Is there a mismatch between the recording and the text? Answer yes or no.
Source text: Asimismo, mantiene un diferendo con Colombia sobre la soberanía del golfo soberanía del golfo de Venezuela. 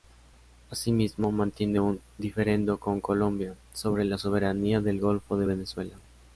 yes